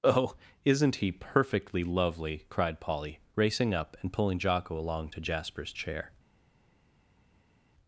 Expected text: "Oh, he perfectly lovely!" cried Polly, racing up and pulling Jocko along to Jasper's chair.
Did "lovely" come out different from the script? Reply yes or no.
no